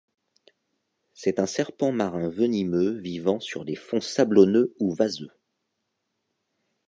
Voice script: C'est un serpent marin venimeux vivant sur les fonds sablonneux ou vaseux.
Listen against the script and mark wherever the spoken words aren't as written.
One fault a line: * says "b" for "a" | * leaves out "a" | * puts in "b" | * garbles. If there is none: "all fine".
all fine